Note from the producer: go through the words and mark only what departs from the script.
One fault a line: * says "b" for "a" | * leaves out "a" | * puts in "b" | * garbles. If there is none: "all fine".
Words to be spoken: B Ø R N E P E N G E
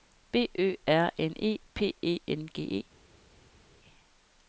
all fine